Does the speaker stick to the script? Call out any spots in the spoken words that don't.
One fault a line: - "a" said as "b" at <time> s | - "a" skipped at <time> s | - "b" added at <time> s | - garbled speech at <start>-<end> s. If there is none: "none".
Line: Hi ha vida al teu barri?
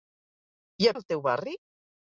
- "vida" skipped at 0.9 s